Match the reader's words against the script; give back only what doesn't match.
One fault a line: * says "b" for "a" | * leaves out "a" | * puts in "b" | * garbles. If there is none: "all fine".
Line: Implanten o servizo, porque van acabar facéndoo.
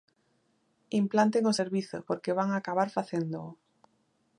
all fine